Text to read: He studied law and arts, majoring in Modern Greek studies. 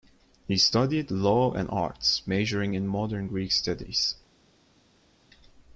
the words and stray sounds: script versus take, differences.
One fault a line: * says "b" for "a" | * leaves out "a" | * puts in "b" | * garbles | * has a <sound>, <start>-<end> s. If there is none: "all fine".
all fine